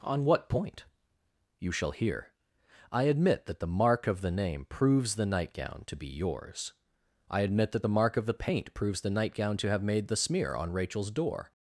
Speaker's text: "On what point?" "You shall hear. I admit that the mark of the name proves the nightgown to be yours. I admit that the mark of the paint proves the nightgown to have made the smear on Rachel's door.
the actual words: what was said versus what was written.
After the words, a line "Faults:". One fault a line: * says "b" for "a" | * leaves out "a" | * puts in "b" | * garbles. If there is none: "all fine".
"On what point?" "You shall hear. I admit that the mark of the name proves the nightgown to be yours. I admit that the mark of the paint proves the nightgown to have made the smear on Rachel's door.
Faults:
all fine